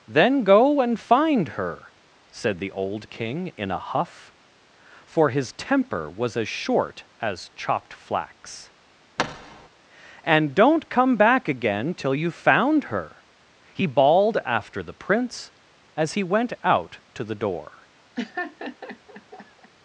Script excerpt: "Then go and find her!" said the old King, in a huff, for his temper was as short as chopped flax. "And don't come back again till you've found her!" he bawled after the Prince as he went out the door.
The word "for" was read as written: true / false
true